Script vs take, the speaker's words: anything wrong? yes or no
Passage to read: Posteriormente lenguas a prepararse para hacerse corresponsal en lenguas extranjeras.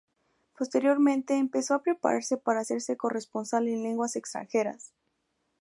yes